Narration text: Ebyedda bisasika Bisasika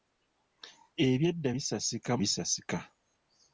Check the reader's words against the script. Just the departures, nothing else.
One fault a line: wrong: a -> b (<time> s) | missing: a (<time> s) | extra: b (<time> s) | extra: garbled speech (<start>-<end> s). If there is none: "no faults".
no faults